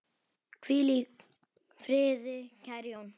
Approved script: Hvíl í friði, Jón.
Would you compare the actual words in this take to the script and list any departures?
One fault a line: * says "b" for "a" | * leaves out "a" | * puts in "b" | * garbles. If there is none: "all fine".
* puts in "kæri"